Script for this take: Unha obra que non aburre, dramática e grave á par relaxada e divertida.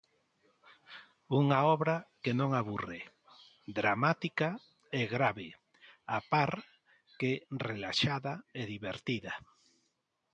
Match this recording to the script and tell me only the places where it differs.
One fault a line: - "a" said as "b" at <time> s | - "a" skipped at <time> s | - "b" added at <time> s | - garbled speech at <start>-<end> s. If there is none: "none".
- "que" added at 7.2 s